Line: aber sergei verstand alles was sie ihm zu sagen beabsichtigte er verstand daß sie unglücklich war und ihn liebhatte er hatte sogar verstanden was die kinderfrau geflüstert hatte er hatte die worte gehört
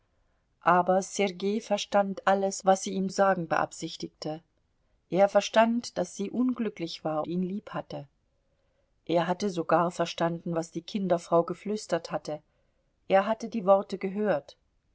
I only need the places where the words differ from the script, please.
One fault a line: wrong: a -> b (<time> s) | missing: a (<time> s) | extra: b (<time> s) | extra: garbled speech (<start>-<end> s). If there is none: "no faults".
missing: zu (3.1 s)
missing: und (7.2 s)